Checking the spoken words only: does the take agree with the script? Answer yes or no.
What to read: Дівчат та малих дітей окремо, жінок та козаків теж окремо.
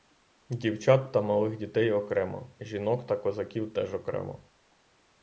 yes